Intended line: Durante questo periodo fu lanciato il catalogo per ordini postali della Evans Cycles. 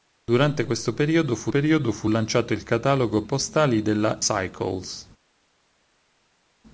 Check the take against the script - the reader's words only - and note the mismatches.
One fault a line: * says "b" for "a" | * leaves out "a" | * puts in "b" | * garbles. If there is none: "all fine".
* puts in "periodo fu"
* leaves out "per ordini"
* leaves out "Evans"